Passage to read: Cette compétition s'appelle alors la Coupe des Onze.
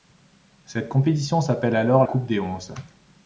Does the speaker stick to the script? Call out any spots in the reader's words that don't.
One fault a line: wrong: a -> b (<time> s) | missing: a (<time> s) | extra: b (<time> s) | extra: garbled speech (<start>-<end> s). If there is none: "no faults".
missing: la (2.0 s)